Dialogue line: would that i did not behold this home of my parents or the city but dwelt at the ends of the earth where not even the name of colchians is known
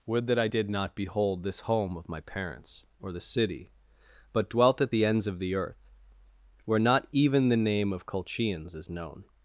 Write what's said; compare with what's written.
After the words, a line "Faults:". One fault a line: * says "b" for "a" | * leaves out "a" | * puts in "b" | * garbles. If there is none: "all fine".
would that i did not behold this home of my parents or the city but dwelt at the ends of the earth where not even the name of colchians is known
Faults:
all fine